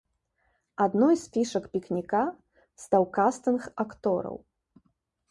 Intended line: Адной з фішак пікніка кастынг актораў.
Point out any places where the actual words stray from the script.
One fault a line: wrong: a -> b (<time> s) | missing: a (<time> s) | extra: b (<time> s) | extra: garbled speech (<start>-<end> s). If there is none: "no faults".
extra: стаў (2.9 s)